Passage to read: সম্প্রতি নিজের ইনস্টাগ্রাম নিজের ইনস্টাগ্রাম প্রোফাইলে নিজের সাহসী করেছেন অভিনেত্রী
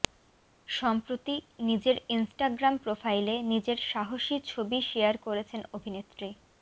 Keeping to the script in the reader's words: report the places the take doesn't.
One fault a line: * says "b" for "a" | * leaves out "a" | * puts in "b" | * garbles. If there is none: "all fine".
* leaves out "নিজের ইনস্টাগ্রাম"
* puts in "ছবি শেয়ার"